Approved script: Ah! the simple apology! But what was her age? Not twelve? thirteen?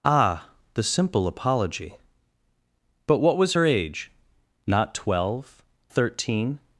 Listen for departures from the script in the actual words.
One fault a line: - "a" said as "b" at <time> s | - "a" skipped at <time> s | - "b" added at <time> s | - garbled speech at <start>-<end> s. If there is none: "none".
none